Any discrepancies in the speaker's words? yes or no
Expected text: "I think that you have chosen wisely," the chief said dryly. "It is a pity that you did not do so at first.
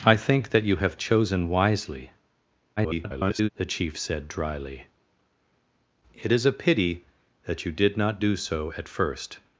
yes